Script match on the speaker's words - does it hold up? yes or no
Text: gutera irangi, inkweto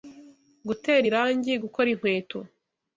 no